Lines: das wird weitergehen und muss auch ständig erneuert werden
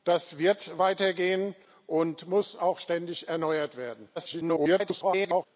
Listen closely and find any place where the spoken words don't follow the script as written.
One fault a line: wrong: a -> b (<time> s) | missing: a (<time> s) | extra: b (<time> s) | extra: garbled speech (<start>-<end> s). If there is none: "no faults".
extra: garbled speech (4.2-5.5 s)